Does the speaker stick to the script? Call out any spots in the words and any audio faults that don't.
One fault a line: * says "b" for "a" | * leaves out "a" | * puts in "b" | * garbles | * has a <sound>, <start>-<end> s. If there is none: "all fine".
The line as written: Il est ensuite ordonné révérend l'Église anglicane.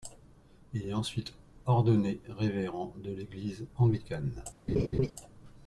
* puts in "de"
* has a laugh, 4.7-5.1 s